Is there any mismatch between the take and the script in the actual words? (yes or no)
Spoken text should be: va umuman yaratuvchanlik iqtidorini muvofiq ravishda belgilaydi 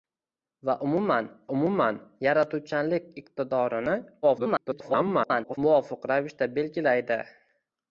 yes